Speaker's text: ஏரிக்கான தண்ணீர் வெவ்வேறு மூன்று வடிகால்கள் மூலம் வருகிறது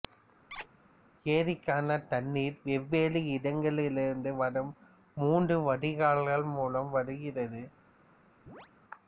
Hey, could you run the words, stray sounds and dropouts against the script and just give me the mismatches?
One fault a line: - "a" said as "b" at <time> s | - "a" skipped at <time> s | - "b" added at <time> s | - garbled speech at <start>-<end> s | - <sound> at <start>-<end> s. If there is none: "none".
- squeak at 0.5-0.7 s
- "இடங்களிலிருந்து வரும்" added at 3.3 s
- chirp at 8.5-8.7 s